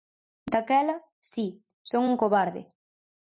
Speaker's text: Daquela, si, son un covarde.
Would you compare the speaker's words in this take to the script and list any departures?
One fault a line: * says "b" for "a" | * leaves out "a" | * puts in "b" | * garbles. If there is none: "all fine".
all fine